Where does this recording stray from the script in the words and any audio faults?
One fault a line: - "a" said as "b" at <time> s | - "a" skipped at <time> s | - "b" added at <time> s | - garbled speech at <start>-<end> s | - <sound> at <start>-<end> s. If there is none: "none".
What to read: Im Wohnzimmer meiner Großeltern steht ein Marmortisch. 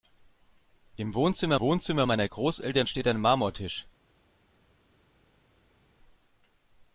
- "Wohnzimmer" added at 1.6 s